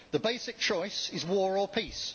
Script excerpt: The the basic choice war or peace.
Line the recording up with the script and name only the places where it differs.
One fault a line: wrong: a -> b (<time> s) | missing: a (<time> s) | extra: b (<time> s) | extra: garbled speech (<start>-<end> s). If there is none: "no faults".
missing: the (0.2 s)
extra: is (1.1 s)